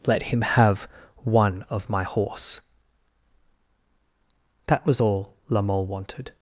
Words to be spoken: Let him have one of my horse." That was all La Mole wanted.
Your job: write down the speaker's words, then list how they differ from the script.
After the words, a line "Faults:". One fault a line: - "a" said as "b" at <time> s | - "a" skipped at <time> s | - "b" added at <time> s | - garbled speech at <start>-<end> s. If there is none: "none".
Let him have one of my horse." That was all La Mole wanted.
Faults:
none